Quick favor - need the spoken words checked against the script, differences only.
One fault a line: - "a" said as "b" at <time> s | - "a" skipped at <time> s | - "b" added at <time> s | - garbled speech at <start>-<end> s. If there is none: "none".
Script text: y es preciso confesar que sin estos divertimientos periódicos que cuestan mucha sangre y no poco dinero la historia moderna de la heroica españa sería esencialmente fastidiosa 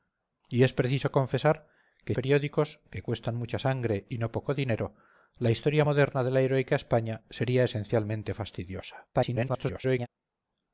- "sin estos divertimientos" skipped at 2.1 s
- garbled speech at 9.1-10.1 s